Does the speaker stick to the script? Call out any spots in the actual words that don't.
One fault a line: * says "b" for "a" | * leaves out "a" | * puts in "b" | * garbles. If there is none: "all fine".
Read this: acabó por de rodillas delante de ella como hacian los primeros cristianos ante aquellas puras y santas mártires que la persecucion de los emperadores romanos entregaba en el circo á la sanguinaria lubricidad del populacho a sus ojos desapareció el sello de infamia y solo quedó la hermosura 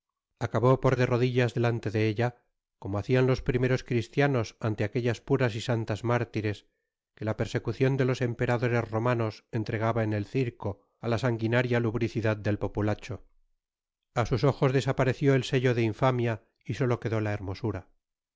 all fine